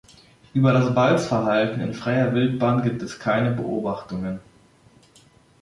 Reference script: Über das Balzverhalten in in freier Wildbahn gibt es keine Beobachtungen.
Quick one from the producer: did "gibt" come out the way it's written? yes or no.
yes